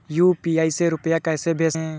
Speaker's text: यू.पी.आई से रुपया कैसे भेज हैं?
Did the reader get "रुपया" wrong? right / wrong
right